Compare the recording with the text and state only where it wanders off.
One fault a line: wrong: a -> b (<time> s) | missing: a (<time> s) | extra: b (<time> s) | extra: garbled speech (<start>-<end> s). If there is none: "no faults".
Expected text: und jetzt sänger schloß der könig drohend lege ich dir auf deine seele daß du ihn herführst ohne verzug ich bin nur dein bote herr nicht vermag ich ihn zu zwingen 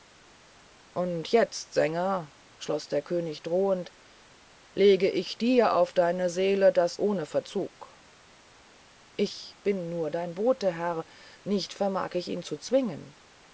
missing: du ihn herführst (7.0 s)